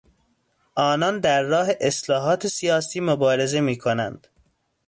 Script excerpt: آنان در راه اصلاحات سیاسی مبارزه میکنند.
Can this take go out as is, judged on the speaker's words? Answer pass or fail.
pass